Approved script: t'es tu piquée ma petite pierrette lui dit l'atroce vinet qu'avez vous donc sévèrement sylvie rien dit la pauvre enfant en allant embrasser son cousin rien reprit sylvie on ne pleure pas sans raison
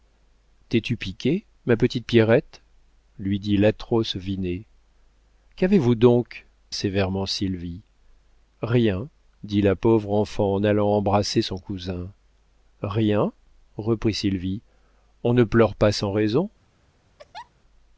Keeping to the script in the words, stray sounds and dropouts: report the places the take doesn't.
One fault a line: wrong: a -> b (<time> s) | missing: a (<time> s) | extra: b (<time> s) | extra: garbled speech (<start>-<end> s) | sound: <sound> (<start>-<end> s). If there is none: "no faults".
sound: laugh (17.2-17.5 s)